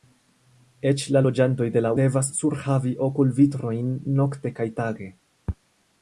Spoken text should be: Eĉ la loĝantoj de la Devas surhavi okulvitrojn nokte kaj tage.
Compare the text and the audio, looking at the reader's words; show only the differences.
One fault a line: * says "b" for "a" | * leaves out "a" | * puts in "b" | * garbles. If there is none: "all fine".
all fine